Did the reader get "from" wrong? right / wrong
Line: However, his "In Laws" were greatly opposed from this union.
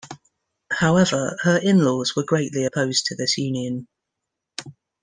wrong